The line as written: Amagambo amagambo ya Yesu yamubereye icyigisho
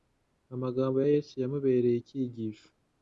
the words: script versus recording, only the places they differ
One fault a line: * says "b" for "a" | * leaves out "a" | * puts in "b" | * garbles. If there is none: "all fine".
* leaves out "amagambo"